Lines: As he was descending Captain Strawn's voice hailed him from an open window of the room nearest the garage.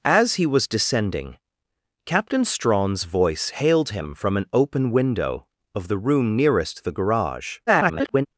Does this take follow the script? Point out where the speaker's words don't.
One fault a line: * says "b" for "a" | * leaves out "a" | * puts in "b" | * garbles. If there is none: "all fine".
* garbles